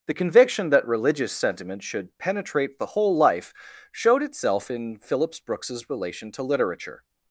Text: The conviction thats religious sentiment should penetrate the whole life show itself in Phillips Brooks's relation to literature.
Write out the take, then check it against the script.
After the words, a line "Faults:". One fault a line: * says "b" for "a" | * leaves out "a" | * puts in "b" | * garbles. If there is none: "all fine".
The conviction that religious sentiment should penetrate the whole life showed itself in Phillips Brooks's relation to literature.
Faults:
* says "that" for "thats"
* says "showed" for "show"